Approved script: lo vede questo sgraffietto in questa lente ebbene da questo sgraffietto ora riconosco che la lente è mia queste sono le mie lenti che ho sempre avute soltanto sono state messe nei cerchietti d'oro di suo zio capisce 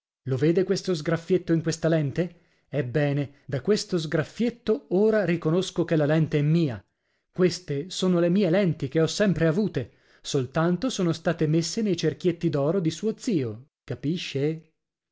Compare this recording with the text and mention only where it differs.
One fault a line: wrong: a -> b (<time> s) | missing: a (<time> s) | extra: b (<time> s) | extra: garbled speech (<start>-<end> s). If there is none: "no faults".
no faults